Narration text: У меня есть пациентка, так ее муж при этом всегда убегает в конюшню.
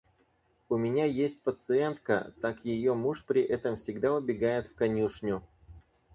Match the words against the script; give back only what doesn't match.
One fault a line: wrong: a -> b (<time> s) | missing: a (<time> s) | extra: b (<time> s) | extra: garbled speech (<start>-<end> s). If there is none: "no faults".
no faults